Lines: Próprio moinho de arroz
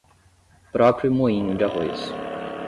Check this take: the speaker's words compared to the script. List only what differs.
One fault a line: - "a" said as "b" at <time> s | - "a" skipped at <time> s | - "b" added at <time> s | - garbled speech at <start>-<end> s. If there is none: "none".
none